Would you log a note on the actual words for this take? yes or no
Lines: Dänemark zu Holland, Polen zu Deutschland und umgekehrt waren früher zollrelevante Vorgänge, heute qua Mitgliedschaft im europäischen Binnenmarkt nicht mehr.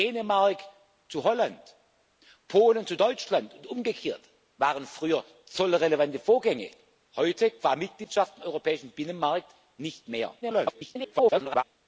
yes